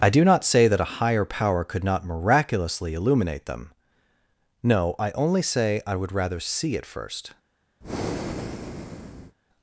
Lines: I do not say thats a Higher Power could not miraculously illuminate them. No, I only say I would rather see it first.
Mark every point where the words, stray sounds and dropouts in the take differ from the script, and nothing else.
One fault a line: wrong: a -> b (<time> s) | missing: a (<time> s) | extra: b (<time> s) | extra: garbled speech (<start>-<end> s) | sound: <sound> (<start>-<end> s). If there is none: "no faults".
wrong: thats -> that (0.7 s)
sound: breath (7.8-9.4 s)